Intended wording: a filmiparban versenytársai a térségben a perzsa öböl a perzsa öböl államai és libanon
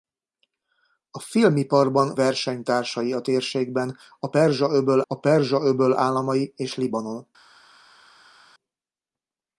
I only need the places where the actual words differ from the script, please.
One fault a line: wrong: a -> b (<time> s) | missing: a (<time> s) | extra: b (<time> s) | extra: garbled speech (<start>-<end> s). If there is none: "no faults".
no faults